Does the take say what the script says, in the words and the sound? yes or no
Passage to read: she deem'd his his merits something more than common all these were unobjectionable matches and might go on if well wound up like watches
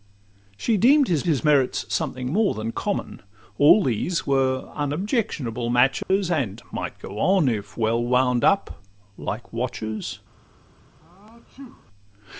no